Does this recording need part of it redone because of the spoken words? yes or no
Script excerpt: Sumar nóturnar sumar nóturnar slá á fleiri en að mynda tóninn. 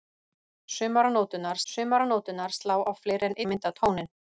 no